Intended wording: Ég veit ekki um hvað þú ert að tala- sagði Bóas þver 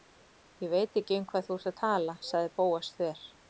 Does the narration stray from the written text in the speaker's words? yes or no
no